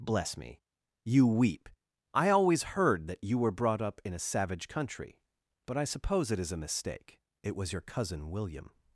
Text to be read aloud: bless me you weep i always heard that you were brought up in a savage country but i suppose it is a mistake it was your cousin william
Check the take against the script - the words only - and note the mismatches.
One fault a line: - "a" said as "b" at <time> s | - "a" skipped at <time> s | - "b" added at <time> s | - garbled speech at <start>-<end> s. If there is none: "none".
none